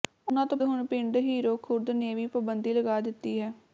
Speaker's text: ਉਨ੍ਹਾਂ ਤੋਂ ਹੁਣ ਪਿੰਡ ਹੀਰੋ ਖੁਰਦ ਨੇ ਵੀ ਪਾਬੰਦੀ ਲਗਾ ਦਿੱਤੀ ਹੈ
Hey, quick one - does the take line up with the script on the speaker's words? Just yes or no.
yes